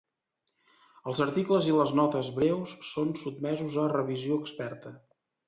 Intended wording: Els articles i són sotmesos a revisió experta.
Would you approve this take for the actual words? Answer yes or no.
no